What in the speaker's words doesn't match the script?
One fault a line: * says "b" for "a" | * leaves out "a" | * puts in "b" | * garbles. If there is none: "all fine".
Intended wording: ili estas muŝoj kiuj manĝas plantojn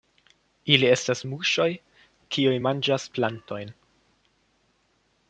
all fine